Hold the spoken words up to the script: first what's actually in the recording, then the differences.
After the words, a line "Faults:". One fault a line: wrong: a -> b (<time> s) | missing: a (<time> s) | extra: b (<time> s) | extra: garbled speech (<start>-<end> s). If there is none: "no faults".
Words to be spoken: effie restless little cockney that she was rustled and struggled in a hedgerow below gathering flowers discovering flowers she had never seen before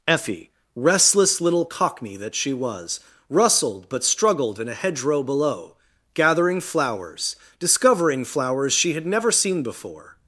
effie restless little cockney that she was rustled but struggled in a hedgerow below gathering flowers discovering flowers she had never seen before
Faults:
wrong: and -> but (3.9 s)